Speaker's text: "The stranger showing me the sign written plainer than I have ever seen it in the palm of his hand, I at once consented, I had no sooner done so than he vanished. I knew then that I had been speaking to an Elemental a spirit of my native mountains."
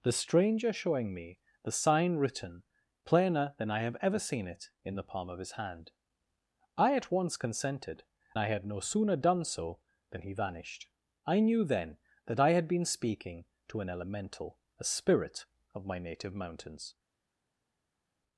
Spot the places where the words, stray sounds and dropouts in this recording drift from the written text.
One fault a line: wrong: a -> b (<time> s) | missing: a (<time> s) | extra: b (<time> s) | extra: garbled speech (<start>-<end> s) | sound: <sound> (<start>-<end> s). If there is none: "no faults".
no faults